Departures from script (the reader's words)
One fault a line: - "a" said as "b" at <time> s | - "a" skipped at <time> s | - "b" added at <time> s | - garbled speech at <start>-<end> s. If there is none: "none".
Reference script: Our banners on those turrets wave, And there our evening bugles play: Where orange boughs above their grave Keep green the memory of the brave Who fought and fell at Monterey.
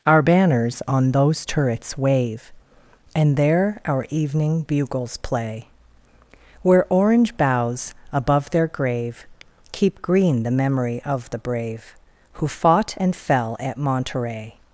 none